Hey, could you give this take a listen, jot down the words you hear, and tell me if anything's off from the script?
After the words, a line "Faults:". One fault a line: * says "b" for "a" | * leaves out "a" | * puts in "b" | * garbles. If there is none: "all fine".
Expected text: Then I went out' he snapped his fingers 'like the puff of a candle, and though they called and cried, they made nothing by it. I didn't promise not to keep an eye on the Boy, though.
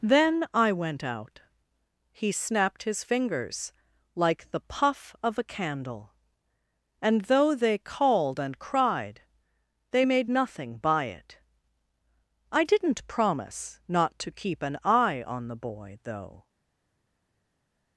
Then I went out' he snapped his fingers 'like the puff of a candle, and though they called and cried, they made nothing by it. I didn't promise not to keep an eye on the Boy, though.
Faults:
all fine